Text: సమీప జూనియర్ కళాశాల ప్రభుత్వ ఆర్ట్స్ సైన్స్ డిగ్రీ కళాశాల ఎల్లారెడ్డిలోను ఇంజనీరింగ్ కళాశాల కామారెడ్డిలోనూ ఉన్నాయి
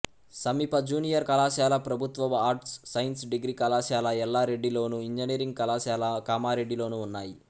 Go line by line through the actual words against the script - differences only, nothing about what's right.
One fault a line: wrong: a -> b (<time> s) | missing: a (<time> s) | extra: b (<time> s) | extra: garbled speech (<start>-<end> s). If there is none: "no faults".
no faults